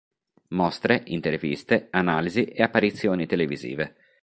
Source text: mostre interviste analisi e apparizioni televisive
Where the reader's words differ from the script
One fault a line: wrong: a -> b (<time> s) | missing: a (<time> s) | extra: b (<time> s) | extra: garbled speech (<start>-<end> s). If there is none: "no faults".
no faults